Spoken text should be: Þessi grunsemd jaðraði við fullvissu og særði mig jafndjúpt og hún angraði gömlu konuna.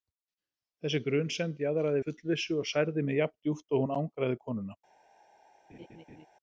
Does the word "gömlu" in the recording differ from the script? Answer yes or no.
yes